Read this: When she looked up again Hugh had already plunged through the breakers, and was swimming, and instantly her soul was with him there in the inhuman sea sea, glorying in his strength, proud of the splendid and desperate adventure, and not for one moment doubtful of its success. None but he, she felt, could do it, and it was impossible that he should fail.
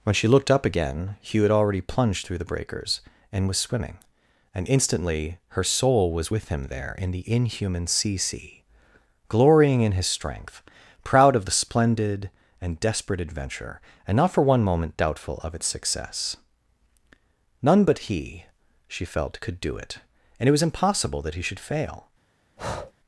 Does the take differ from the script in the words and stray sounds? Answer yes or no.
yes